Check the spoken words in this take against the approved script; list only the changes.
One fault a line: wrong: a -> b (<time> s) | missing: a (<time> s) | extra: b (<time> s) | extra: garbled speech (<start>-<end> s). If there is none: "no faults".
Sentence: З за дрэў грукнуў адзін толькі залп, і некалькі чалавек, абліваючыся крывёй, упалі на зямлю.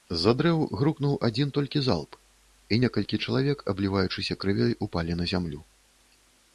no faults